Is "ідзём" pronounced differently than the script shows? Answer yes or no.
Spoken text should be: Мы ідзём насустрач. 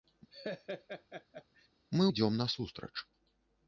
no